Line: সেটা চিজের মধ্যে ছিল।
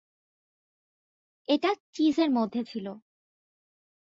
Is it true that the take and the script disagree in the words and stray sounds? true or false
true